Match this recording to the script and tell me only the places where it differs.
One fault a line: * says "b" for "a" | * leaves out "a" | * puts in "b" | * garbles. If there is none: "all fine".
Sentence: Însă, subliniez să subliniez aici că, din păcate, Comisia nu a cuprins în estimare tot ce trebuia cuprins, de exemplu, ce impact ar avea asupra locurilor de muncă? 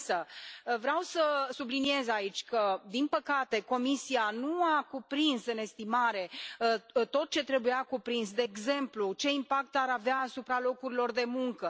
* says "vreau" for "subliniez"